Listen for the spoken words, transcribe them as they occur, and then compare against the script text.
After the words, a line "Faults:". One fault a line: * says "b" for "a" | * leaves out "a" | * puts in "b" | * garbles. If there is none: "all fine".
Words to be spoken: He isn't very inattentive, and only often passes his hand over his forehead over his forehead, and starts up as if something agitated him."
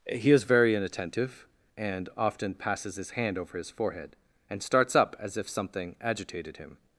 He is very inattentive, and often passes his hand over his forehead, and starts up as if something agitated him."
Faults:
* says "is" for "isn't"
* leaves out "only"
* leaves out "over his forehead"